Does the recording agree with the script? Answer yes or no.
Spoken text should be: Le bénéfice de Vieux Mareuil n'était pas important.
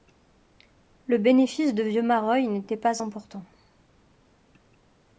yes